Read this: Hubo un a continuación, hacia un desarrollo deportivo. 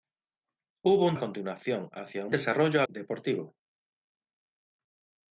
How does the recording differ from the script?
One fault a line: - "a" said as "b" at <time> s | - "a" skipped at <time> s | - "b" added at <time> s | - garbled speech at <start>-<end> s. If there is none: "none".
none